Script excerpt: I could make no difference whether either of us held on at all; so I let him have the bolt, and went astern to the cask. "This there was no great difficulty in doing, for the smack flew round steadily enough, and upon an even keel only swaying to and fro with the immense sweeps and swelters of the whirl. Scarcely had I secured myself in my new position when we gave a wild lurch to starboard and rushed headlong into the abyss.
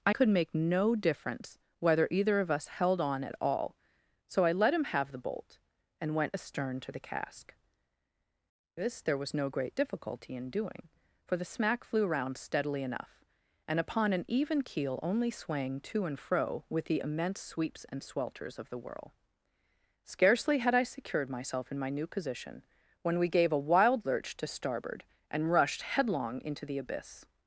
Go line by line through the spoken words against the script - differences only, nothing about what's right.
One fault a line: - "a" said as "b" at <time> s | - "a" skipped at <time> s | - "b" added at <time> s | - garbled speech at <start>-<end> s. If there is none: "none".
none